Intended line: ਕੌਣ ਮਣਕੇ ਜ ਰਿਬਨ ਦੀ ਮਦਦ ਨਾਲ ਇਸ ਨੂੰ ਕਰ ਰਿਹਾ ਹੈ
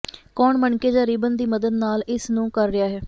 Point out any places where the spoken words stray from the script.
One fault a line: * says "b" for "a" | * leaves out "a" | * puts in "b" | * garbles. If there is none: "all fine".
all fine